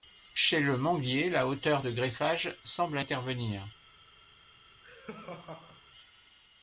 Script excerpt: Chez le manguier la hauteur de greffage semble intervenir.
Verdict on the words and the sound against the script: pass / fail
fail